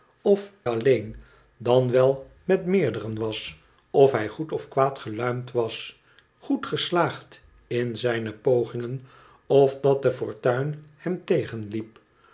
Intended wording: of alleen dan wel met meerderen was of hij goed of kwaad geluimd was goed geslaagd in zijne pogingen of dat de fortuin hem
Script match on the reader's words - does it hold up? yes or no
yes